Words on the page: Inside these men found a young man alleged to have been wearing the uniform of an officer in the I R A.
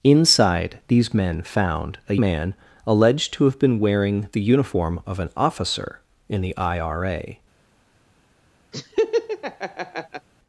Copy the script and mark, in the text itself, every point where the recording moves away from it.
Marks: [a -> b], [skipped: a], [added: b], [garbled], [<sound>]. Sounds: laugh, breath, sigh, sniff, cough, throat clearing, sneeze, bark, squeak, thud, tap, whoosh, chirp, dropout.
Inside these men found a [skipped: young] man alleged to have been wearing the uniform of an officer in the I R A. [laugh]